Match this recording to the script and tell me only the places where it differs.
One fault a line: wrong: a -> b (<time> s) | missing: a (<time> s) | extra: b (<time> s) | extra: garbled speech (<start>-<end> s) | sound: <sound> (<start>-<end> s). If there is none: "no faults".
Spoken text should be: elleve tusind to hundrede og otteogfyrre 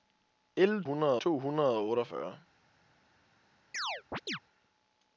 wrong: tusind -> hundrede (0.8 s)
sound: chirp (3.7-4.4 s)